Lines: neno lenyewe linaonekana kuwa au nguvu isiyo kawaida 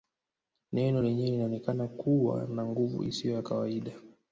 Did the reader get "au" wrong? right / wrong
wrong